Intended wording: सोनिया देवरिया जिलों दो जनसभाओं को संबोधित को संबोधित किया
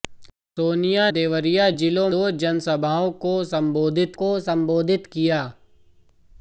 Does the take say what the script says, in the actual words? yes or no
yes